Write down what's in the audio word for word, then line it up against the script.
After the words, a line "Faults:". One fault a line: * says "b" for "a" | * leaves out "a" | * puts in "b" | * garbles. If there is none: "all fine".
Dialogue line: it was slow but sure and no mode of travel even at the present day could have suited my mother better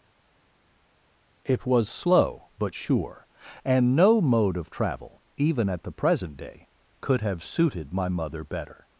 it was slow but sure and no mode of travel even at the present day could have suited my mother better
Faults:
all fine